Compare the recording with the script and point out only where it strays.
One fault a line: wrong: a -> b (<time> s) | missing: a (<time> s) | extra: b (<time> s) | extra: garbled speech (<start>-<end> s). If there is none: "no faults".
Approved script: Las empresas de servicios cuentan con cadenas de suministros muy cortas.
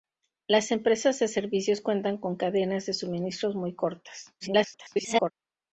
extra: garbled speech (4.4-5.3 s)